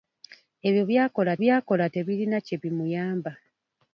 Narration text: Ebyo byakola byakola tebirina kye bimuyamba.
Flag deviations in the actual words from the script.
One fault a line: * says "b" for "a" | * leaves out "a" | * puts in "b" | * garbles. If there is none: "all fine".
all fine